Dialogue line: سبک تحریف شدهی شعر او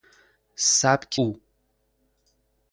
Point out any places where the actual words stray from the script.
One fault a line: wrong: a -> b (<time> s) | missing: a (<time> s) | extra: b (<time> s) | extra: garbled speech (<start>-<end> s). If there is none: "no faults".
missing: تحریف شدهی شعر (1.2 s)